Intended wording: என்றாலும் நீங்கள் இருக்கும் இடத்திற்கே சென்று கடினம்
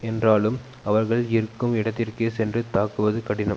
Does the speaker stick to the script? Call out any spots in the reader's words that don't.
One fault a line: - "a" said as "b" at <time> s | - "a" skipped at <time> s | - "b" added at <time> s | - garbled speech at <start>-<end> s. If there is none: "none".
- "நீங்கள்" said as "அவர்கள்" at 0.8 s
- "தாக்குவது" added at 2.7 s